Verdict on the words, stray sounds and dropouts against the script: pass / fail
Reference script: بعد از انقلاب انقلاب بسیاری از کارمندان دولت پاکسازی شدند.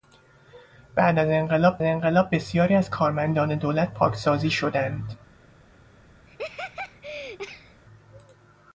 fail